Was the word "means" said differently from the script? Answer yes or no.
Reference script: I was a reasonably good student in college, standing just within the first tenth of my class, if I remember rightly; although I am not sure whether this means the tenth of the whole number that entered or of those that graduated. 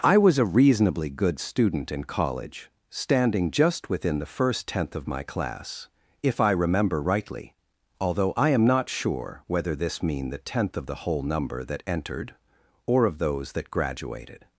yes